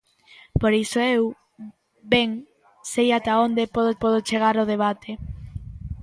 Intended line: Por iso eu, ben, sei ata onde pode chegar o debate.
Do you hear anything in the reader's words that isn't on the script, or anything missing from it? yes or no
yes